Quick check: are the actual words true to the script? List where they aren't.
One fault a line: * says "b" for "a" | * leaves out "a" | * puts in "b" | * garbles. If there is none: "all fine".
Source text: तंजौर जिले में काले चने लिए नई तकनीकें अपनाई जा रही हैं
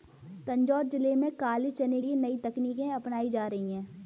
all fine